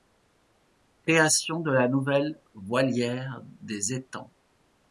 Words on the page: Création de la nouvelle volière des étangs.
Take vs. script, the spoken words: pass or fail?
pass